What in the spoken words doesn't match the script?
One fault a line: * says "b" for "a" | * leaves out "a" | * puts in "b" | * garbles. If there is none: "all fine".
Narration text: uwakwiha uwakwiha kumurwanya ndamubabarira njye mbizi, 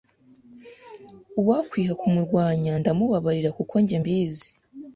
* leaves out "uwakwiha"
* puts in "kuko"